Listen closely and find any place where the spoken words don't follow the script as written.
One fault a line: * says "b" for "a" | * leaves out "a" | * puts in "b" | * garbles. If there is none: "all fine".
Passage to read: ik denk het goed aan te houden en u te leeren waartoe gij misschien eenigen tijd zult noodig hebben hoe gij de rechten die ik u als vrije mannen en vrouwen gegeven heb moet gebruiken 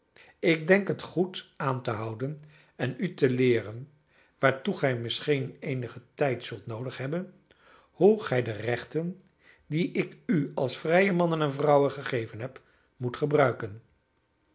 all fine